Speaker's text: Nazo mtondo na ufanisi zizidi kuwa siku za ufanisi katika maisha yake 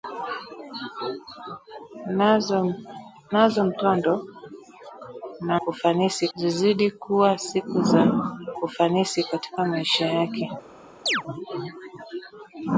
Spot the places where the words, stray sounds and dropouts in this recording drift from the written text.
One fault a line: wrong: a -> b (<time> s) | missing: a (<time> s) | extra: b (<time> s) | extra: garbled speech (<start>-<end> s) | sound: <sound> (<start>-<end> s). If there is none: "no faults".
sound: chirp (11.1-11.2 s)